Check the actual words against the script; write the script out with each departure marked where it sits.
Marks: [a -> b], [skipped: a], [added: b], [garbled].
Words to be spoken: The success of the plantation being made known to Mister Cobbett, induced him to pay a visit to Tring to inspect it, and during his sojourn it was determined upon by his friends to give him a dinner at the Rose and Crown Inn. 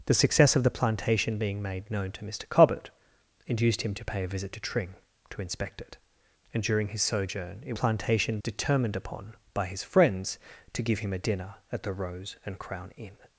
The success of the plantation being made known to Mister Cobbett, induced him to pay a visit to Tring to inspect it, and during his sojourn it [was -> plantation] determined upon by his friends to give him a dinner at the Rose and Crown Inn.